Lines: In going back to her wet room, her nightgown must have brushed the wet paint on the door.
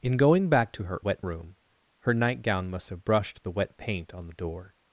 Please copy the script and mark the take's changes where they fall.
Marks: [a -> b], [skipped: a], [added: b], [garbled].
In going back to her wet room, her nightgown must have brushed the wet paint on the door.